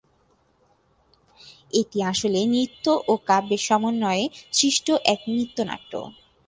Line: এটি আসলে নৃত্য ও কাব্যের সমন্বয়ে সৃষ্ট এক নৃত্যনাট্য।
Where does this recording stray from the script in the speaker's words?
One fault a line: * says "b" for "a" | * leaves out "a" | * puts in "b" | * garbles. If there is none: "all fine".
all fine